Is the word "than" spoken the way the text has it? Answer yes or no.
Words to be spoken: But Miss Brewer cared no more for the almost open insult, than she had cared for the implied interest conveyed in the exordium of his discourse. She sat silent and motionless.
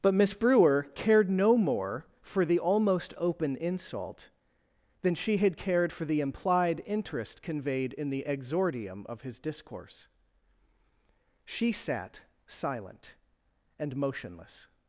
yes